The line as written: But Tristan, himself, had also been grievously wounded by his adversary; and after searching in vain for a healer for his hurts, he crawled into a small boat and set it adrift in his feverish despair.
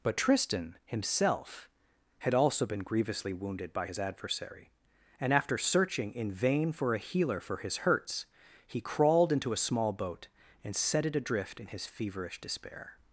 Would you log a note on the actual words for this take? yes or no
no